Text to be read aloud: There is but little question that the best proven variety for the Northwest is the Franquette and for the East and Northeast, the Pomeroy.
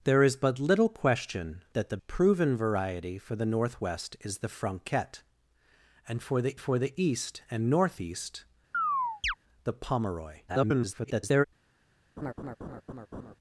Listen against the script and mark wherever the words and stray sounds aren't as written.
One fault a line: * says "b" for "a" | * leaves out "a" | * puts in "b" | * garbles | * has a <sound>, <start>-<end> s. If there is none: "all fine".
* leaves out "best"
* puts in "for the"
* has a chirp, 8.7-9.3 s
* garbles
* has a laugh, 12.2-13.4 s